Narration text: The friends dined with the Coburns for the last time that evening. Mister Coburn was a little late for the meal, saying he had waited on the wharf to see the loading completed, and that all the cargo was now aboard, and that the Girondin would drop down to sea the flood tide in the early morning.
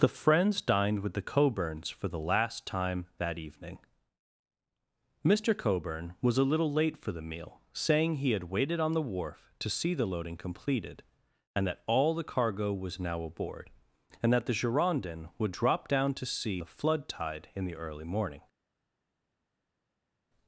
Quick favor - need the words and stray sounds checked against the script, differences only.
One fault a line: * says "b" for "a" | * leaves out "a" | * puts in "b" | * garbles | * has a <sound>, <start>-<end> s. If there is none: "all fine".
all fine